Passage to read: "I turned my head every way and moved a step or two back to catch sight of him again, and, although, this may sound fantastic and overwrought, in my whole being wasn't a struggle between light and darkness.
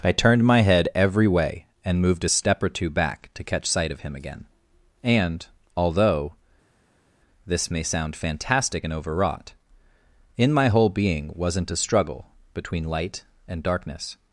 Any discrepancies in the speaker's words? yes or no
no